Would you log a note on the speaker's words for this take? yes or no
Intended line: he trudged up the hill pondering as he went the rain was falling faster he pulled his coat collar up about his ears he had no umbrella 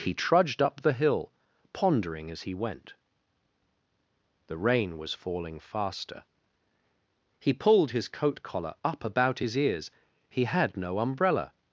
no